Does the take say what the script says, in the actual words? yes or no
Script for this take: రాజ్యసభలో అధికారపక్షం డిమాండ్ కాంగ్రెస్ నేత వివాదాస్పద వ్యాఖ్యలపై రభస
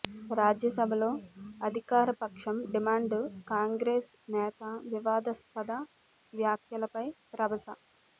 yes